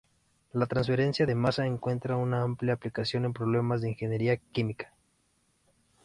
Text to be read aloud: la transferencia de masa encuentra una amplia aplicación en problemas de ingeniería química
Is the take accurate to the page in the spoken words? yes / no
yes